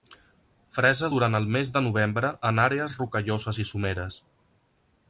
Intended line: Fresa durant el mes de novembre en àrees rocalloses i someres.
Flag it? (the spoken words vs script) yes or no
no